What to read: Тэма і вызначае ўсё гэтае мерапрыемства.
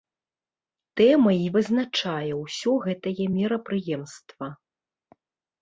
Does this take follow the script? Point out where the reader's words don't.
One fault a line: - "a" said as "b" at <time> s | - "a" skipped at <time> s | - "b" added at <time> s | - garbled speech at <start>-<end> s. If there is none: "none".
none